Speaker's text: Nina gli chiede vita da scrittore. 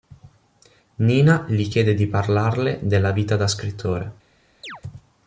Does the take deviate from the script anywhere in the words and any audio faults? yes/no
yes